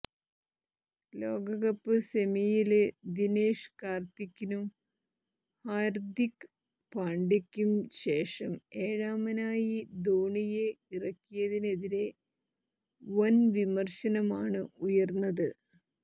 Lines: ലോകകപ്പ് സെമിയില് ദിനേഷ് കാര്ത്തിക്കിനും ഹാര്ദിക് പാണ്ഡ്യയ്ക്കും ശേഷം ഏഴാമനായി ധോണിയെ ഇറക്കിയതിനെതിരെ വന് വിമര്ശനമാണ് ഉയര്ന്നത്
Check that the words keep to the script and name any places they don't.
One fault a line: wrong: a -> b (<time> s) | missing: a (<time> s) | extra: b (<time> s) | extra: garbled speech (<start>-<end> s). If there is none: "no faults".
no faults